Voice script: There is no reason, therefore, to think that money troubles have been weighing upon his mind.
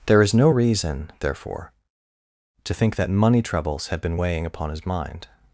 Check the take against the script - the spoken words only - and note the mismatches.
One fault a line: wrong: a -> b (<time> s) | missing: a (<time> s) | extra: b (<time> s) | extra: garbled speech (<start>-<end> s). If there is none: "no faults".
wrong: have -> had (3.9 s)